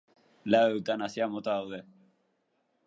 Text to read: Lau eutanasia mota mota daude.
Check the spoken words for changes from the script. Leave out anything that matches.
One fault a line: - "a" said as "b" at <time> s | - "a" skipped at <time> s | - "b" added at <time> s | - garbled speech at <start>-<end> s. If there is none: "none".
- "mota" skipped at 1.6 s